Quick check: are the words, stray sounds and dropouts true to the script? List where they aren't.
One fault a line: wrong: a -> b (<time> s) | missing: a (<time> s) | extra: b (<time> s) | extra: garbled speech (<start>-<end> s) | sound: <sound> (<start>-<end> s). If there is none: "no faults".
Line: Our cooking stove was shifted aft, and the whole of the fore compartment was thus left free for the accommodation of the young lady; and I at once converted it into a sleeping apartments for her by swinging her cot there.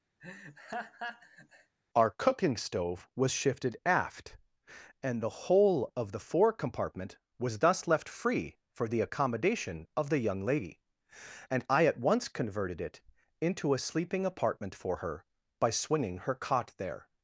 sound: laugh (0.2-1.7 s)
wrong: apartments -> apartment (14.2 s)